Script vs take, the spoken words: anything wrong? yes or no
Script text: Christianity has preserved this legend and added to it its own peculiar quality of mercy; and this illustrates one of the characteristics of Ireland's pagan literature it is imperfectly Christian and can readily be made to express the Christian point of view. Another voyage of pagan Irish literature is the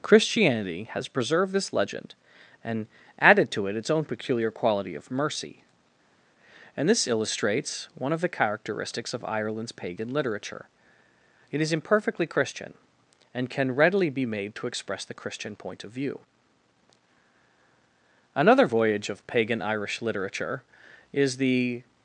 no